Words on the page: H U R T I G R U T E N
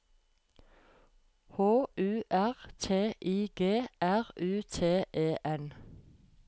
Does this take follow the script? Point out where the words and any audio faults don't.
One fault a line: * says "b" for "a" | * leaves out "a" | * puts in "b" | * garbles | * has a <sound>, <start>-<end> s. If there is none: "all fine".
all fine